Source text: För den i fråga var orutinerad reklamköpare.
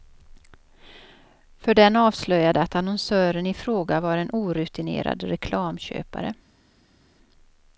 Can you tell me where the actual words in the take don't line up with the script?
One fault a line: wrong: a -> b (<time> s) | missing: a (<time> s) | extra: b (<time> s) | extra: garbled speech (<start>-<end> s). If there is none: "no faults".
extra: avslöjade att annonsören (1.9 s)
extra: en (4.2 s)